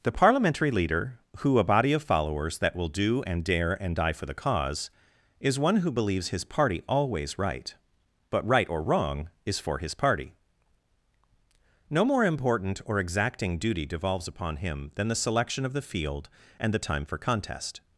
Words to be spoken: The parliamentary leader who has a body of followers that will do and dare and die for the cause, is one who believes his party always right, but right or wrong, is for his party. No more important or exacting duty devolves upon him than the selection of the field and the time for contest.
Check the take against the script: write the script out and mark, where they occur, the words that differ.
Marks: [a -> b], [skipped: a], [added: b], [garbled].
The parliamentary leader who [skipped: has] a body of followers that will do and dare and die for the cause, is one who believes his party always right, but right or wrong, is for his party. No more important or exacting duty devolves upon him than the selection of the field and the time for contest.